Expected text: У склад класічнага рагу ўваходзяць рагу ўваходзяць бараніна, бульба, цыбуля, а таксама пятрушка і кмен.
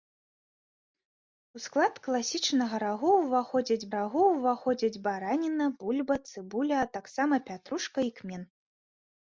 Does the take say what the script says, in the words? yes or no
yes